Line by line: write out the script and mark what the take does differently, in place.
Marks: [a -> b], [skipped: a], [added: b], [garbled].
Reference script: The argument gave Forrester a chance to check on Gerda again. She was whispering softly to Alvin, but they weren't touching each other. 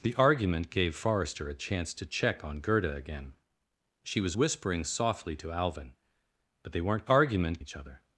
The argument gave Forrester a chance to check on Gerda again. She was whispering softly to Alvin, but they weren't [touching -> argument] each other.